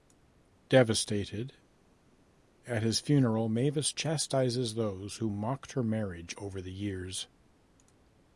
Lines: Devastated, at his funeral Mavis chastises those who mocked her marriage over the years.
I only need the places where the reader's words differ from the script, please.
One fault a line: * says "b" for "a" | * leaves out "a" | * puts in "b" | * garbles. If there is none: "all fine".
all fine